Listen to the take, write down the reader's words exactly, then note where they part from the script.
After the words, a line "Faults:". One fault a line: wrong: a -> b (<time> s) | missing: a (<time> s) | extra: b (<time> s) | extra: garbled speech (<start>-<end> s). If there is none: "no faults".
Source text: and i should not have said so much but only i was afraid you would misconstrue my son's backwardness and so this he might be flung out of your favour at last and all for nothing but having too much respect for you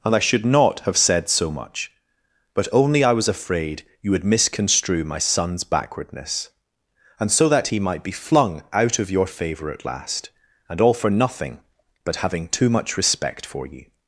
and i should not have said so much but only i was afraid you would misconstrue my son's backwardness and so that he might be flung out of your favour at last and all for nothing but having too much respect for you
Faults:
wrong: this -> that (7.5 s)